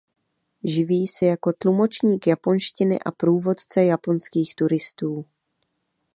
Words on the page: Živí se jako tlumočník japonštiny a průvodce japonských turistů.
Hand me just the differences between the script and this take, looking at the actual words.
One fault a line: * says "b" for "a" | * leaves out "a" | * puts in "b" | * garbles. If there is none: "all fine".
all fine